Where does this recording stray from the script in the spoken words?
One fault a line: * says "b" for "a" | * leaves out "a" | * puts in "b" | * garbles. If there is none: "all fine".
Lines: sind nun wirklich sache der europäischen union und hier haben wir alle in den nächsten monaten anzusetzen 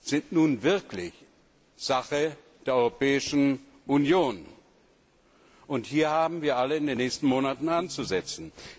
all fine